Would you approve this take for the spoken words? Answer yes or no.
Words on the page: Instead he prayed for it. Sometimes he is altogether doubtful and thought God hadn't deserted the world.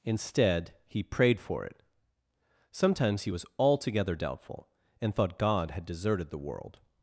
no